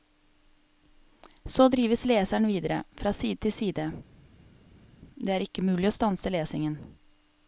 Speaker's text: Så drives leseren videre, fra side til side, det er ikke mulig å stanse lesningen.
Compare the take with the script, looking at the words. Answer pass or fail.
pass